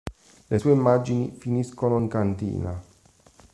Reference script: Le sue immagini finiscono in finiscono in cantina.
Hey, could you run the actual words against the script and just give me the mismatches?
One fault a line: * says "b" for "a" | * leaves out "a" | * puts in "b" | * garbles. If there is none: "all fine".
* leaves out "finiscono in"